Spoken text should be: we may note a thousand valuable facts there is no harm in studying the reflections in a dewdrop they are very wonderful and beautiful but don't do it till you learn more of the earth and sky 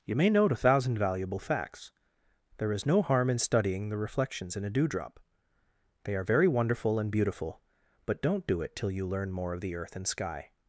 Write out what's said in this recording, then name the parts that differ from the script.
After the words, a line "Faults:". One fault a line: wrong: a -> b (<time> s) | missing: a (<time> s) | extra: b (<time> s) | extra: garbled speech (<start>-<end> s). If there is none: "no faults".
you may note a thousand valuable facts there is no harm in studying the reflections in a dewdrop they are very wonderful and beautiful but don't do it till you learn more of the earth and sky
Faults:
wrong: we -> you (0.0 s)